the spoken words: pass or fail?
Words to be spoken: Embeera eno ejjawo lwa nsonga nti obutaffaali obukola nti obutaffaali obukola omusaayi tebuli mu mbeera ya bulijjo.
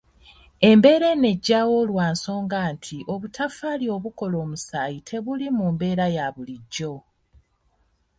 fail